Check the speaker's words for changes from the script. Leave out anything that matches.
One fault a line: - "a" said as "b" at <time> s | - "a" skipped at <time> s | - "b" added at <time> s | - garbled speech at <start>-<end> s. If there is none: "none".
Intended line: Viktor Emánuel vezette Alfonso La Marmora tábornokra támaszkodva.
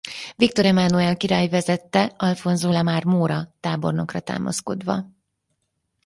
- "király" added at 1.2 s